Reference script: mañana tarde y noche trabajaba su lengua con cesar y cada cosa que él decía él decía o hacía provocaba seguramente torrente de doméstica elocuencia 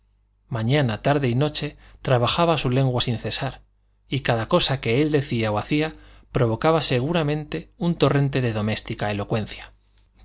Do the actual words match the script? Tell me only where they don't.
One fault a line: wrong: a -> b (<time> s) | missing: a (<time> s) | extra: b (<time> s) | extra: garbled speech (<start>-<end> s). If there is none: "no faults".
wrong: con -> sin (3.0 s)
missing: él decía (5.5 s)
extra: un (7.8 s)